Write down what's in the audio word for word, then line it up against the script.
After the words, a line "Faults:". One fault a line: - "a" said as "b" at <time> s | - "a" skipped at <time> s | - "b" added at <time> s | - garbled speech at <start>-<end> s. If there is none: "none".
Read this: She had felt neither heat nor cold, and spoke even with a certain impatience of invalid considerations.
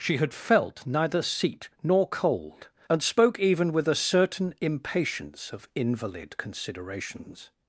She had felt neither seat nor cold, and spoke even with a certain impatience of invalid considerations.
Faults:
- "heat" said as "seat" at 1.2 s